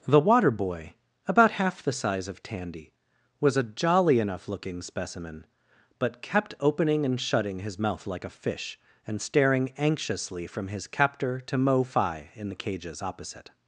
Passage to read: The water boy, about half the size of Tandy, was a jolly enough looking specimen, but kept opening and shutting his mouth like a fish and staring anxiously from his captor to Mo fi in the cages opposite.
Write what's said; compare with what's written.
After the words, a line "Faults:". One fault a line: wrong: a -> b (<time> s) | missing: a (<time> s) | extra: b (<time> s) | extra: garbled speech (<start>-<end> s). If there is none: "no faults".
The water boy, about half the size of Tandy, was a jolly enough looking specimen, but kept opening and shutting his mouth like a fish and staring anxiously from his captor to Mo fi in the cages opposite.
Faults:
no faults